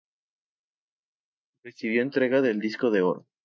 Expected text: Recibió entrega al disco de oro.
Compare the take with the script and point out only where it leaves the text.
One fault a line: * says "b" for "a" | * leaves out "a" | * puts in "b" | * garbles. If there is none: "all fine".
* says "del" for "al"